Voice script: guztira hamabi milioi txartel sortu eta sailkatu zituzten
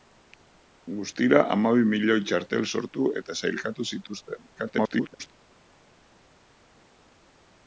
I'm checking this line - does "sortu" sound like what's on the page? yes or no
yes